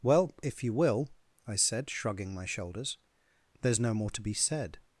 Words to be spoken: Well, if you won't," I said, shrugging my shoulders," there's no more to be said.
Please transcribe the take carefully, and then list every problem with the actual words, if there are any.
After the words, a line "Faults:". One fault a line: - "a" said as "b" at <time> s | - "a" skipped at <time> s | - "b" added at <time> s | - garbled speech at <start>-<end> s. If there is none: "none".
Well, if you will," I said, shrugging my shoulders," there's no more to be said.
Faults:
- "won't" said as "will" at 0.7 s